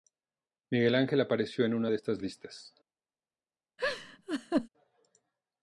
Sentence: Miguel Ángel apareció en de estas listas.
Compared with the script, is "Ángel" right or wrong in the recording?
right